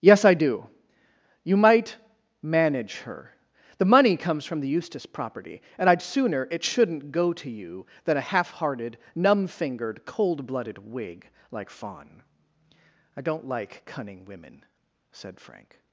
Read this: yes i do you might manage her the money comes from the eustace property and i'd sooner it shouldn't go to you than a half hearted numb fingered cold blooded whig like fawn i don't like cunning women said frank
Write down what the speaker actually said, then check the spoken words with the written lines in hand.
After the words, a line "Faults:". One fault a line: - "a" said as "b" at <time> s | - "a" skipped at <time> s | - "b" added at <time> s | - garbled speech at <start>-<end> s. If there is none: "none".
yes i do you might manage her the money comes from the eustace property and i'd sooner it shouldn't go to you than a half hearted numb fingered cold blooded whig like fawn i don't like cunning women said frank
Faults:
none